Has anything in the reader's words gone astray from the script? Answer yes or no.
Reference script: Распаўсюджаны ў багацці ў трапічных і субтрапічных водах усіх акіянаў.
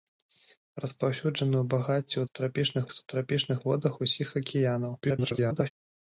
yes